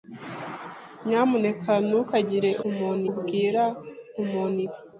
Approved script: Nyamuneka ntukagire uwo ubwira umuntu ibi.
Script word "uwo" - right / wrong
wrong